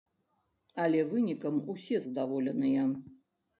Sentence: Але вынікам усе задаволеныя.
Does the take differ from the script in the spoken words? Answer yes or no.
no